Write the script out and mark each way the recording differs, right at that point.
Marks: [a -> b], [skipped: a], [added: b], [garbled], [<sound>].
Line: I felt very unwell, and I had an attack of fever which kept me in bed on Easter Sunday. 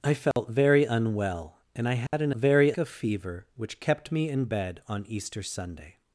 I felt [dropout] very unwell, and I had [dropout] an [attack -> very] of fever which kept me in bed on Easter Sunday.